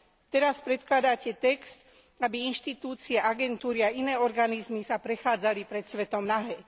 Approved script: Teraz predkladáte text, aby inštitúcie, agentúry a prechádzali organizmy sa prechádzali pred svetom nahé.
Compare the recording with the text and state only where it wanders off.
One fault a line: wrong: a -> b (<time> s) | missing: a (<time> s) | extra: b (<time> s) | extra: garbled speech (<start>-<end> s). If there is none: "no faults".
wrong: prechádzali -> iné (3.9 s)